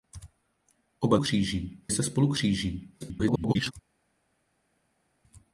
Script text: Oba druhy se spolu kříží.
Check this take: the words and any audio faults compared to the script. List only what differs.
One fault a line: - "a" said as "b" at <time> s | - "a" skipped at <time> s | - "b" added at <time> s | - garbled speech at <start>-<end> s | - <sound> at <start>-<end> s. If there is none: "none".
- "druhy" said as "kříží" at 1.2 s
- garbled speech at 3.0-3.7 s